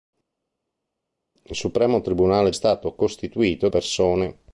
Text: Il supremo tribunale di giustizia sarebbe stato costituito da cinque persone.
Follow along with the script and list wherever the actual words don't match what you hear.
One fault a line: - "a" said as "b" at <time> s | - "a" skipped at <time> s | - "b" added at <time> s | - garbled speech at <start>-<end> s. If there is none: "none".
- "di giustizia sarebbe" skipped at 2.5 s
- "da cinque" skipped at 3.7 s